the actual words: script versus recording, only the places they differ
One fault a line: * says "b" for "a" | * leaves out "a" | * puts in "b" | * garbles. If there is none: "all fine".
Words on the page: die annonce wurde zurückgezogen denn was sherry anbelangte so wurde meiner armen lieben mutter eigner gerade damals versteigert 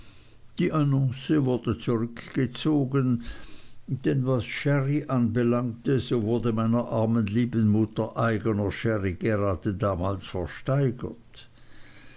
* puts in "sherry"